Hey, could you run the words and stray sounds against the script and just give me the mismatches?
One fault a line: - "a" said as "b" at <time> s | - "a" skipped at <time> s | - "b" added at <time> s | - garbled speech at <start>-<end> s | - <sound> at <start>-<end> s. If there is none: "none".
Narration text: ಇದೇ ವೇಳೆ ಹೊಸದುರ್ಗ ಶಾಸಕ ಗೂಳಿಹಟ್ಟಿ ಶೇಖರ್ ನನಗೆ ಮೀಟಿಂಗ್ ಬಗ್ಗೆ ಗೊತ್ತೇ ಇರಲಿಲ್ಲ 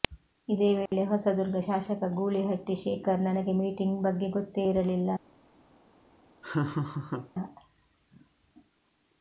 - dropout at 0.9-0.9 s
- laugh at 6.4-7.3 s